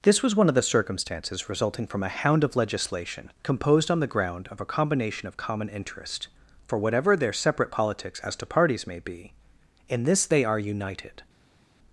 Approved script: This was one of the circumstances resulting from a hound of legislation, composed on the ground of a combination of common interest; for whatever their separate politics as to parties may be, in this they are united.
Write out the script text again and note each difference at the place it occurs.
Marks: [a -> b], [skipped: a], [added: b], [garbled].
This was one of the circumstances resulting from a hound of legislation, composed on the ground of a combination of common interest; for whatever their separate politics as to parties may be, in this they are united.